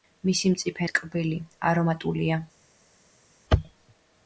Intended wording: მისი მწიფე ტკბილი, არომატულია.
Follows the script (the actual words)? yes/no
yes